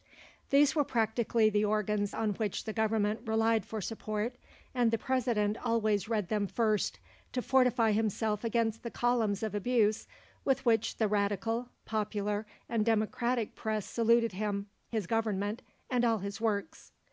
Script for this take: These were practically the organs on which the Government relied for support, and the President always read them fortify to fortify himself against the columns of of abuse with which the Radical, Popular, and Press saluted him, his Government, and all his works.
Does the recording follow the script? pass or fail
fail